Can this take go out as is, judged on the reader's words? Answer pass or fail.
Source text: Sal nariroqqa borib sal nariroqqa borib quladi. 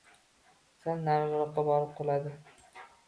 fail